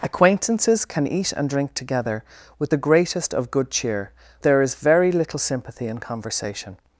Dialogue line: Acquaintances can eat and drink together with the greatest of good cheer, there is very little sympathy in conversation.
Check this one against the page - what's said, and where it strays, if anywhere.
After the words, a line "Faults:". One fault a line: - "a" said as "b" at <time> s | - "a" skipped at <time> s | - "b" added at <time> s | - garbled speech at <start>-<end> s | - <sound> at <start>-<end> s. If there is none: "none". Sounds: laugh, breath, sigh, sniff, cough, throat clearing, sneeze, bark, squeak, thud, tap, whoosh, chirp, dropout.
Acquaintances can eat and drink together with the greatest of good cheer, there is very little sympathy in conversation.
Faults:
none